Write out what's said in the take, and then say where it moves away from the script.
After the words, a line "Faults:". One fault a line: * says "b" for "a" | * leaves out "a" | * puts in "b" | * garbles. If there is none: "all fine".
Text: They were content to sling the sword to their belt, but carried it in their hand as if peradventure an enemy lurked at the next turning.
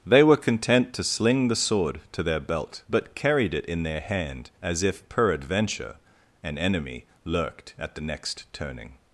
They were content to sling the sword to their belt, but carried it in their hand as if peradventure an enemy lurked at the next turning.
Faults:
all fine